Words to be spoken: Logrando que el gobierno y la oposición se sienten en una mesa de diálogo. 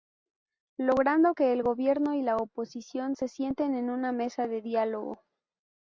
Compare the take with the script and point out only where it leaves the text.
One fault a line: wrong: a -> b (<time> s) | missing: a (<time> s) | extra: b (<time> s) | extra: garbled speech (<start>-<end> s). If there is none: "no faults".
no faults